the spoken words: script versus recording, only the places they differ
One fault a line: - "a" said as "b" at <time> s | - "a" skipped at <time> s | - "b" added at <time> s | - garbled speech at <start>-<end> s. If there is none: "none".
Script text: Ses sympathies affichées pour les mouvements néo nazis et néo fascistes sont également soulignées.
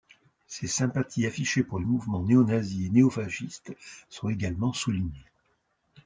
none